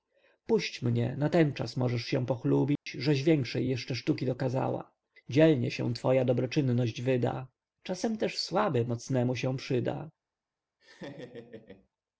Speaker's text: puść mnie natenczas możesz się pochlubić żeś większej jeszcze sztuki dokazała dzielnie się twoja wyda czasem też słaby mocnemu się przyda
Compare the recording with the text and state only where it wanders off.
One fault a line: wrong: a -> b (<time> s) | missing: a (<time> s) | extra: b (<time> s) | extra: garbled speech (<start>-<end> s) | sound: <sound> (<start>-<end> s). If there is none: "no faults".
sound: dropout (2.8-2.9 s)
extra: dobroczynność (6.2 s)
sound: laugh (10.8-11.9 s)